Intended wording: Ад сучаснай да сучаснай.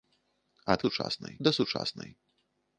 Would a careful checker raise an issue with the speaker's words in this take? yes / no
no